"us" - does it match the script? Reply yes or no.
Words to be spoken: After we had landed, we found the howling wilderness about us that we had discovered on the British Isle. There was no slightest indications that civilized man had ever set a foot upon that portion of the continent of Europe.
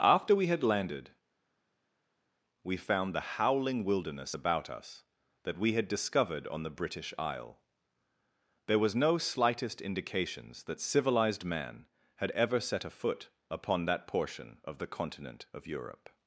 yes